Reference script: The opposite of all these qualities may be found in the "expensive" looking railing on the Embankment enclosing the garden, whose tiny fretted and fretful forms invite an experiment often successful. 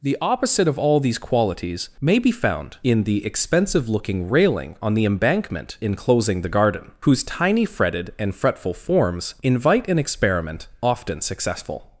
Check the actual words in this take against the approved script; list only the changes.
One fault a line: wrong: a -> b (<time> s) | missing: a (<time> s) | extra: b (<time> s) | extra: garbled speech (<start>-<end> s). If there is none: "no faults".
no faults